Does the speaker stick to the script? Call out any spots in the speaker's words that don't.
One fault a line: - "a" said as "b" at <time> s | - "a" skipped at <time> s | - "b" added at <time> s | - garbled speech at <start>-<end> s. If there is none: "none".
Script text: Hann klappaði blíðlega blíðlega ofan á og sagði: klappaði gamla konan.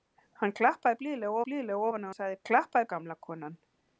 none